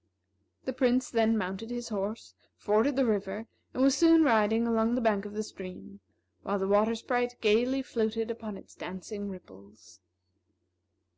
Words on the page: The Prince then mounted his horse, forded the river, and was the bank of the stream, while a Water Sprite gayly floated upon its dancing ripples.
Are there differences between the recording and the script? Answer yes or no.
yes